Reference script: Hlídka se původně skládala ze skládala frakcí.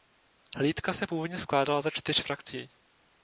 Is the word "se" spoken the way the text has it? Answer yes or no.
yes